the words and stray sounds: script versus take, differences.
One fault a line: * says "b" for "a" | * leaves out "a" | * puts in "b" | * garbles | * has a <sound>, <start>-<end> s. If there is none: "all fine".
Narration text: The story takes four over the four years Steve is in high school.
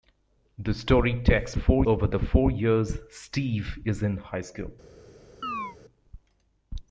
* has a chirp, 5.4-5.8 s